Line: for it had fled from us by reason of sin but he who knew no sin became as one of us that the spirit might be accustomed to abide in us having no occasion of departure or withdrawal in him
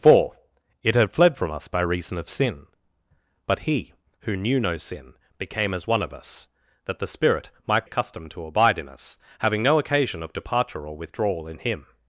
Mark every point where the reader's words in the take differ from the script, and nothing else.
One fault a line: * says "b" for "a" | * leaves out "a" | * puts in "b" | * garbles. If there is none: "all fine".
* leaves out "be"